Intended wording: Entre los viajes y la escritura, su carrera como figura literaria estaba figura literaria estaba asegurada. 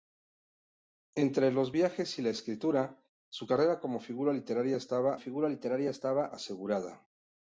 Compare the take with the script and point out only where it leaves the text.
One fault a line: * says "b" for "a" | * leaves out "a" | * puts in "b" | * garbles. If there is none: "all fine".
all fine